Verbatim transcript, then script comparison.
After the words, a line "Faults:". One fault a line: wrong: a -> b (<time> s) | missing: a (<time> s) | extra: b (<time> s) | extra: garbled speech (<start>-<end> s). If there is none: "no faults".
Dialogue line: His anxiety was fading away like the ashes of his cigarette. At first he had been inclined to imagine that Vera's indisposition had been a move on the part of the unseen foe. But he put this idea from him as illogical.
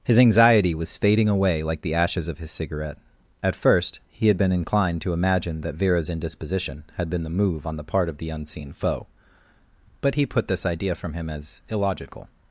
His anxiety was fading away like the ashes of his cigarette. At first he had been inclined to imagine that Vera's indisposition had been the move on the part of the unseen foe. But he put this idea from him as illogical.
Faults:
wrong: a -> the (7.2 s)